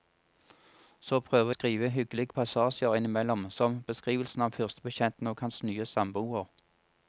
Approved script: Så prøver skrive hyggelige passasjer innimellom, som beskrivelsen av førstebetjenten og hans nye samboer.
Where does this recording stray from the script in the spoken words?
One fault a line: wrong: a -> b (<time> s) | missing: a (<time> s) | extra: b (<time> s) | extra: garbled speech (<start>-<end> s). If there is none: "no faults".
no faults